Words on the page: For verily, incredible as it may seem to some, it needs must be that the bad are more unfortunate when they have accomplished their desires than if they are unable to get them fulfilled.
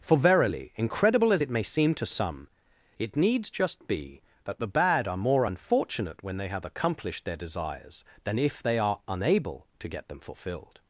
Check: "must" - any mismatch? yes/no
yes